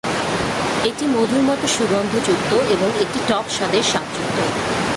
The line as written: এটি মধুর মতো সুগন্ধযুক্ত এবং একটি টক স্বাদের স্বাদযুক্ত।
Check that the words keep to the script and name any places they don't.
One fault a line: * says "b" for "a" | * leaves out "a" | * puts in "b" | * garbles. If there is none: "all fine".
all fine